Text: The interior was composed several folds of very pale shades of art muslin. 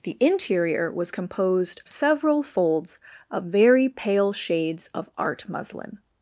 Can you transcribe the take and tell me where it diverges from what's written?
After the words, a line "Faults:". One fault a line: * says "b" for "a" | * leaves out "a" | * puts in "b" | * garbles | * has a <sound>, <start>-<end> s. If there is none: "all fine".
The interior was composed several folds of very pale shades of art muslin.
Faults:
all fine